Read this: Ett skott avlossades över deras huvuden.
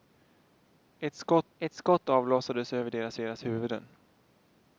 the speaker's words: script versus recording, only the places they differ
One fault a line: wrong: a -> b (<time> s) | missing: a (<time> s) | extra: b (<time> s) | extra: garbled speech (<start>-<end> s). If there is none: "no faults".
extra: ett skott (1.6 s)
extra: deras (3.1 s)